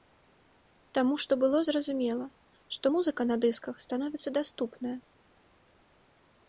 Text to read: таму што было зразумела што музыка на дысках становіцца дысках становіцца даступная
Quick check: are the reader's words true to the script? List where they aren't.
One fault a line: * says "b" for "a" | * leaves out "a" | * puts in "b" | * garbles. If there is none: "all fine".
* leaves out "дысках становіцца"